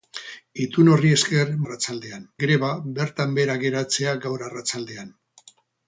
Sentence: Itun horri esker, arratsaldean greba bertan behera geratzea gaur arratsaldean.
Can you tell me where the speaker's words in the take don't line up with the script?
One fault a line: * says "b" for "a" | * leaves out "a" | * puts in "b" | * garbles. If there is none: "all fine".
all fine